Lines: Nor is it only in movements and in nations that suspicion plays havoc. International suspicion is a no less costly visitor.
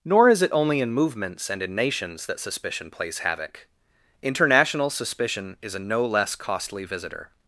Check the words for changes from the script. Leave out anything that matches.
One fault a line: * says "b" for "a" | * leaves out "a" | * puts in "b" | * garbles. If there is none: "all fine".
all fine